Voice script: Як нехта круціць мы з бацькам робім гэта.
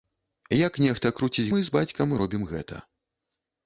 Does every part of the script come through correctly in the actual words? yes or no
yes